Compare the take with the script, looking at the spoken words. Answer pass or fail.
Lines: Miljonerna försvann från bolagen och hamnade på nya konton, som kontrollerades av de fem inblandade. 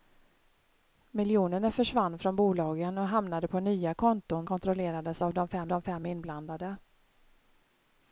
fail